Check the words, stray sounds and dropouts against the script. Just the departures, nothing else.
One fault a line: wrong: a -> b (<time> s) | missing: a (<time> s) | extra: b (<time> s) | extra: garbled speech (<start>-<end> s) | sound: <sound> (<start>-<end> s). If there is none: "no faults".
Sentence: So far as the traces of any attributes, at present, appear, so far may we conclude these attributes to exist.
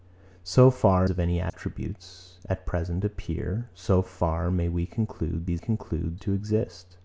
missing: as the traces (1.1 s)
sound: dropout (1.5-1.5 s)
wrong: attributes -> conclude (5.6 s)